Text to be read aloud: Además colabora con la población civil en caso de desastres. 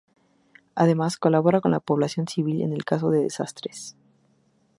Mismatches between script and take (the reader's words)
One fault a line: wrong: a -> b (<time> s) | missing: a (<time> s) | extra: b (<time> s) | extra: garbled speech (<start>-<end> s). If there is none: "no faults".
no faults